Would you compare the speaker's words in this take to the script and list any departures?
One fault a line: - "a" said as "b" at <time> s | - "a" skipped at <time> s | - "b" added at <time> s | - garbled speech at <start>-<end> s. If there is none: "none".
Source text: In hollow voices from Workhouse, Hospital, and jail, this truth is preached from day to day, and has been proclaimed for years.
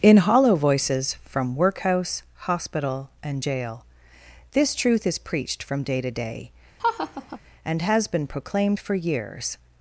none